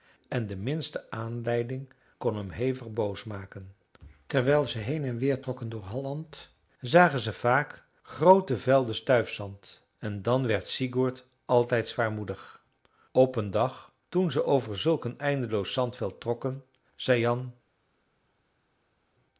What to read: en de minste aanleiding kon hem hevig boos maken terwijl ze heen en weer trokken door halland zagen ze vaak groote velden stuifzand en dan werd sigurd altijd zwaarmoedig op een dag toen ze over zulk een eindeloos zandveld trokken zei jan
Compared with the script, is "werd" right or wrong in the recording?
right